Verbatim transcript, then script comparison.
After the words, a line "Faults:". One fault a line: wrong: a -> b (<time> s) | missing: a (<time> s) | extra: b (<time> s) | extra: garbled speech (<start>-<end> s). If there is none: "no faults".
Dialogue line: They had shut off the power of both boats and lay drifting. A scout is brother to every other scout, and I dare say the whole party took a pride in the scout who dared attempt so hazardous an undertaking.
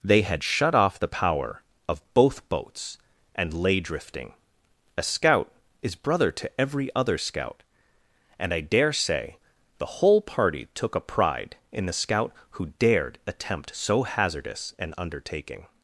They had shut off the power of both boats and lay drifting. A scout is brother to every other scout, and I dare say the whole party took a pride in the scout who dared attempt so hazardous an undertaking.
Faults:
no faults